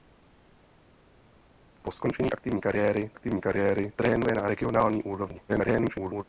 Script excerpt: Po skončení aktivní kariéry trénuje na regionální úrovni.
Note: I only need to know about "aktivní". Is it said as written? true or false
true